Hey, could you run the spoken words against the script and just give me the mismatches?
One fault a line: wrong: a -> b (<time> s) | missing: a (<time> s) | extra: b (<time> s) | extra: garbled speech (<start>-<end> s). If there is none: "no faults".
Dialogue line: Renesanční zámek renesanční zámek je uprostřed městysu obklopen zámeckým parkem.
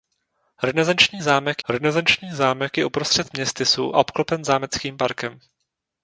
no faults